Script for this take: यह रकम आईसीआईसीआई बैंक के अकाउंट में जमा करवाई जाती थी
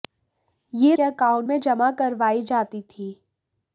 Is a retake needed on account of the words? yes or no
yes